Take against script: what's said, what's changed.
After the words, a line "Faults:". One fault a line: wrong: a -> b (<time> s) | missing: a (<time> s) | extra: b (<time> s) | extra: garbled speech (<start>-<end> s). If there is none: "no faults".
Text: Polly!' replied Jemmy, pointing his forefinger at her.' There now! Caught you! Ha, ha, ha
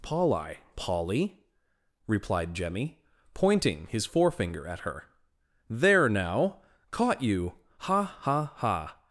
Polly!' polly replied Jemmy, pointing his forefinger at her.' There now! Caught you! Ha, ha, ha
Faults:
extra: polly (0.8 s)